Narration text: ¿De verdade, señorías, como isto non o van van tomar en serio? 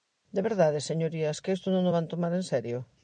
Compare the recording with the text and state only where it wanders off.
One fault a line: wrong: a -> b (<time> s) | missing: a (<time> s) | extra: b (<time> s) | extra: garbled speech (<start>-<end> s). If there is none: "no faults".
wrong: como -> que (1.4 s)
missing: van (2.1 s)